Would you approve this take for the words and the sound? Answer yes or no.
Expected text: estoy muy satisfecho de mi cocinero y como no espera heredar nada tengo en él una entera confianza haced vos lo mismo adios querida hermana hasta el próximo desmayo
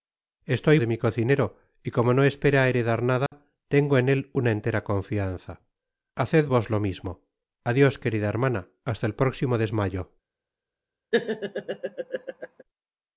no